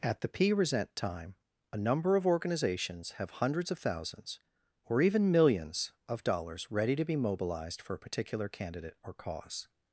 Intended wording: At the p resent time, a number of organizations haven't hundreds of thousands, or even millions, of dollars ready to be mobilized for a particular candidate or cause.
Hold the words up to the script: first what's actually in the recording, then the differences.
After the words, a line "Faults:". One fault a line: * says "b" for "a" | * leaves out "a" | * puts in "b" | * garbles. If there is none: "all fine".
At the p resent time, a number of organizations have hundreds of thousands, or even millions, of dollars ready to be mobilized for a particular candidate or cause.
Faults:
* says "have" for "haven't"